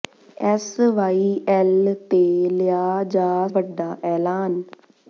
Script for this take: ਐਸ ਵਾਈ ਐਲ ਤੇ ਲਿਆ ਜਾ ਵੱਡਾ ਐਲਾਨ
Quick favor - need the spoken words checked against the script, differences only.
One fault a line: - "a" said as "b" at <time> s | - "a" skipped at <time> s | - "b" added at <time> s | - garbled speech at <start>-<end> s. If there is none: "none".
none